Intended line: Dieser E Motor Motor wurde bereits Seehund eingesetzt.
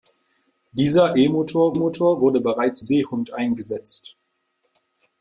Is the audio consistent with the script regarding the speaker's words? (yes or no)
yes